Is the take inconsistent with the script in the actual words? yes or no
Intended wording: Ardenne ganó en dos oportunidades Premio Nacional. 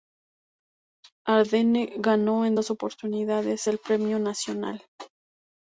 yes